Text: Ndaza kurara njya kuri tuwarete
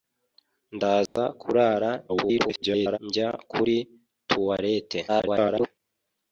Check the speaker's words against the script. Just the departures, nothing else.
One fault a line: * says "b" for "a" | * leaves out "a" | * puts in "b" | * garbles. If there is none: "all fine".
* garbles
* garbles